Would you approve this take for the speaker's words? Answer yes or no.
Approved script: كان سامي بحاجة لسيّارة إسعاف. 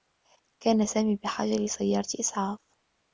yes